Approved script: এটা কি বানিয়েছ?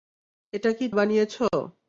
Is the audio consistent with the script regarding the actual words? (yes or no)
yes